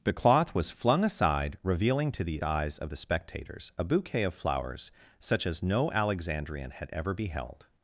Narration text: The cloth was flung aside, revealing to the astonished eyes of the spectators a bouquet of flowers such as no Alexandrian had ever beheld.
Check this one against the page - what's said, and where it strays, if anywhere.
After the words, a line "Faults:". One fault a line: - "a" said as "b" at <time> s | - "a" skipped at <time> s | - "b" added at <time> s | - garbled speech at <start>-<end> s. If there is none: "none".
The cloth was flung aside, revealing to the eyes of the spectators a bouquet of flowers such as no Alexandrian had ever beheld.
Faults:
- "astonished" skipped at 2.4 s